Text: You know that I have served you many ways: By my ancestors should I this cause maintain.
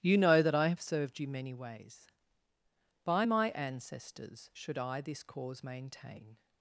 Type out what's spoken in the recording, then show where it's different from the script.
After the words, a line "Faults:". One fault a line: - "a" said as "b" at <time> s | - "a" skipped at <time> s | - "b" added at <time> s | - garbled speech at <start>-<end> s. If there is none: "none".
You know that I have served you many ways: By my ancestors should I this cause maintain.
Faults:
none